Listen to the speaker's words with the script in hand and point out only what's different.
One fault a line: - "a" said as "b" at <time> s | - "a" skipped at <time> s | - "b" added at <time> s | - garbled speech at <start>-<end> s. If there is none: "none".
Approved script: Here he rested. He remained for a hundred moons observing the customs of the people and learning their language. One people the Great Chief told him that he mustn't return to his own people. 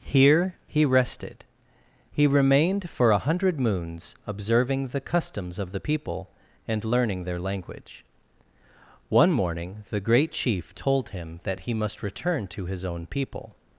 - "people" said as "morning" at 9.3 s
- "mustn't" said as "must" at 11.7 s